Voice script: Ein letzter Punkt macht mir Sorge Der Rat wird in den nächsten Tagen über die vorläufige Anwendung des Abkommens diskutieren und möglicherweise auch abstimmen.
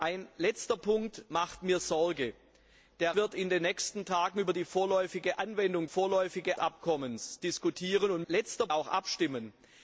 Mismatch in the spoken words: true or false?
true